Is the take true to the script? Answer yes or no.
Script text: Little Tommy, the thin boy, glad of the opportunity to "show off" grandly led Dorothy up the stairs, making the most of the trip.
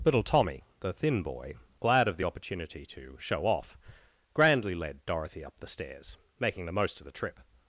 yes